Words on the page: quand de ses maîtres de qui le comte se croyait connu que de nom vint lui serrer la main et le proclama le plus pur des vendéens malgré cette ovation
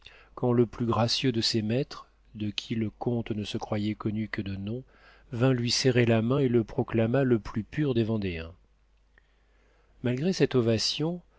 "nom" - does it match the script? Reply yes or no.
yes